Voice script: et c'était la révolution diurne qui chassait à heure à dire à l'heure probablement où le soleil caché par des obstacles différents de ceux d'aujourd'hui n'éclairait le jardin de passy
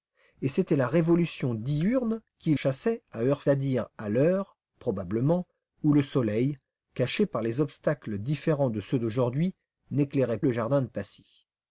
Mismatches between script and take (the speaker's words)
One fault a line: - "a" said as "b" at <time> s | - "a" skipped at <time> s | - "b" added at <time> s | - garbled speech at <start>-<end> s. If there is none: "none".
none